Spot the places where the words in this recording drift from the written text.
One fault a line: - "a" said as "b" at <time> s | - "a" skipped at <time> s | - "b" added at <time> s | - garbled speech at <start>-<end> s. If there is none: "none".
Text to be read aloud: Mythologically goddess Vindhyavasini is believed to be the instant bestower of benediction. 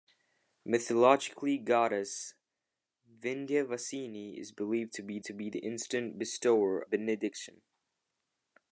- "to be" added at 5.2 s
- "of" skipped at 6.8 s